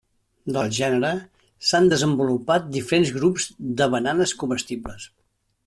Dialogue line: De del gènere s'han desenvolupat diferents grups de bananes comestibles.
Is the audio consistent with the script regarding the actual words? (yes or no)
yes